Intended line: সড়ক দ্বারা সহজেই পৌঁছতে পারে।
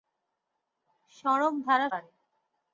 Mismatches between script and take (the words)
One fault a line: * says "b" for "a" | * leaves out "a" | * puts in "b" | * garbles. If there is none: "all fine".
* leaves out "সহজেই পৌঁছতে"